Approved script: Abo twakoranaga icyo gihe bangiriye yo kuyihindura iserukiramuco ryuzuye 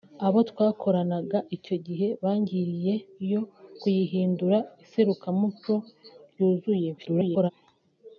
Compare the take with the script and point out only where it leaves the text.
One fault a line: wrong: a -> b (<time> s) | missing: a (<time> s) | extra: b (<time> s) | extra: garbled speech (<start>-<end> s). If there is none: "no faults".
extra: garbled speech (7.0-7.5 s)